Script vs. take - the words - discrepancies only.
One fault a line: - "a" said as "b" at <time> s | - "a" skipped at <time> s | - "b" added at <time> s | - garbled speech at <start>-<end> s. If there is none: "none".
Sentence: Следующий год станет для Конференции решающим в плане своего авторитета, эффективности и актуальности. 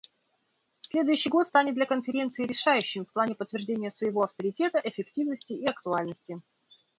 - "подтверждения" added at 3.4 s